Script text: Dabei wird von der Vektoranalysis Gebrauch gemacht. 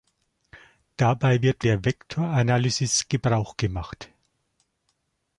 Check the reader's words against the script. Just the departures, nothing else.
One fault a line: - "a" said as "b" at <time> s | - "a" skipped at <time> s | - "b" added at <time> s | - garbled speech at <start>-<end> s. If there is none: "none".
- "von" skipped at 1.7 s